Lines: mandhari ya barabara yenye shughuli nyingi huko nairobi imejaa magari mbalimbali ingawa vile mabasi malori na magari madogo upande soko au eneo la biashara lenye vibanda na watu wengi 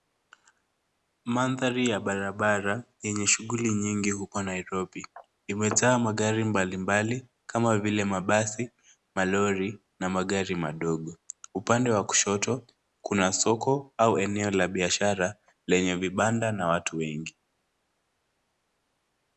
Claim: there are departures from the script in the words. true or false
true